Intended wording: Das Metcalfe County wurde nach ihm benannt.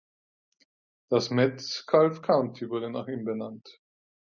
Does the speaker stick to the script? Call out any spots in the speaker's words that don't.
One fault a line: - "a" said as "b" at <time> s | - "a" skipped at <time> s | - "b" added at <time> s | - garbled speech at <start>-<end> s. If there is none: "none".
none